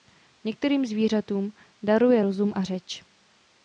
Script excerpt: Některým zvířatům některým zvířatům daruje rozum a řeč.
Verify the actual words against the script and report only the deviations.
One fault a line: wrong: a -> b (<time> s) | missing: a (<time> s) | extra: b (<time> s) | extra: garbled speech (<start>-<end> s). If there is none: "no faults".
missing: některým zvířatům (1.5 s)